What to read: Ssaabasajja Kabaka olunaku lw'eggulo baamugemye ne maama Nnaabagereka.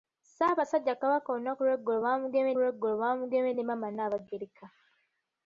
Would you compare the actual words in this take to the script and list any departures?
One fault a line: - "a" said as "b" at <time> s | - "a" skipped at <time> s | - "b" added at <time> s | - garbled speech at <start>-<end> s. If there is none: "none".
- "lw'eggulo baamugemye" added at 2.6 s